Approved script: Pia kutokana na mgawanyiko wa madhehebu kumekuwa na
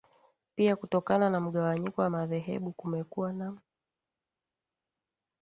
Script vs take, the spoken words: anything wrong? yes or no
no